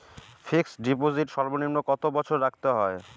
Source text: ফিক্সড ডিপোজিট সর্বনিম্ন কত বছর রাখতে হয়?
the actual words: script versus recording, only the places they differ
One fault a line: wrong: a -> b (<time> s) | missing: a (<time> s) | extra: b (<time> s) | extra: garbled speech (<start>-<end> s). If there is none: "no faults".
no faults